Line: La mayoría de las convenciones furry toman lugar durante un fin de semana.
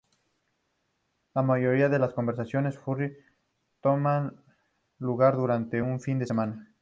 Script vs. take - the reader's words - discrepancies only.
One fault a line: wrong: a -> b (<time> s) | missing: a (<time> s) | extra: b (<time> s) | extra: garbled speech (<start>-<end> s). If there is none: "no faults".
no faults